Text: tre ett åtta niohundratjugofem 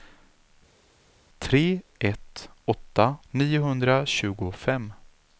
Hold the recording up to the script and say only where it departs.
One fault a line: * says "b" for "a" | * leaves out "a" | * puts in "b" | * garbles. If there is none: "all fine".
all fine